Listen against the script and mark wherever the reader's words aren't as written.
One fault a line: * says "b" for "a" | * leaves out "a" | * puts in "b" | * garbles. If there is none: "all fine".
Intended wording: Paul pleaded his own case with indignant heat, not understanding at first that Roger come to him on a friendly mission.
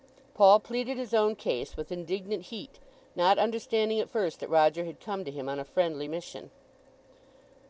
* puts in "had"